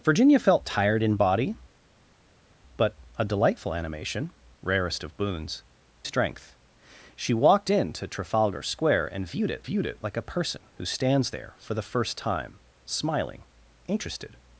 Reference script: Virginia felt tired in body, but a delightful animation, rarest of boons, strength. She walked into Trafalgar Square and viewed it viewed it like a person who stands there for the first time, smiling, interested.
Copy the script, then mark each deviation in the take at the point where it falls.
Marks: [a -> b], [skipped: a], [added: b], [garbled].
Virginia felt tired in body, but a delightful animation, rarest of boons, strength. She walked into Trafalgar Square and viewed it viewed it like a person who stands there for the first time, smiling, interested.